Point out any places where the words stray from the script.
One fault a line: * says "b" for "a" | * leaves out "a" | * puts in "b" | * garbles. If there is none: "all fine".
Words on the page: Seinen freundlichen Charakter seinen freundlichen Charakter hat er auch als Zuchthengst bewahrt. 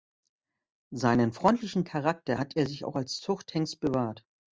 * leaves out "seinen freundlichen Charakter"
* puts in "sich"